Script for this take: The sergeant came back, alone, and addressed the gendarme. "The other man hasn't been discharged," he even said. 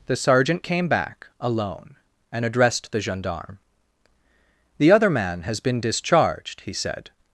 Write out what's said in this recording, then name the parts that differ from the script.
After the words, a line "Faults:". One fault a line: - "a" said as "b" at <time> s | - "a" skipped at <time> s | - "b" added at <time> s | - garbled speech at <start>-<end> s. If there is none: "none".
The sergeant came back, alone, and addressed the gendarme. "The other man has been discharged," he said.
Faults:
- "hasn't" said as "has" at 5.4 s
- "even" skipped at 6.7 s